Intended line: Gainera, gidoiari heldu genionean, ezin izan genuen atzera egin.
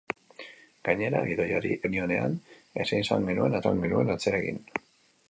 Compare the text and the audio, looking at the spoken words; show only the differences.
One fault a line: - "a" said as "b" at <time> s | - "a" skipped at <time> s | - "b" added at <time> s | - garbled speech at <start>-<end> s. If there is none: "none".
- "heldu" skipped at 1.8 s
- "izan genuen" added at 3.6 s